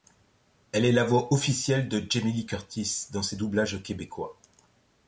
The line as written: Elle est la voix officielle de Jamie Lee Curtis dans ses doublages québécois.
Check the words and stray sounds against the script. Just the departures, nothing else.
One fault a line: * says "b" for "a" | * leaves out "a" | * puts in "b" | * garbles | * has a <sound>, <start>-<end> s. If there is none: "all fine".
all fine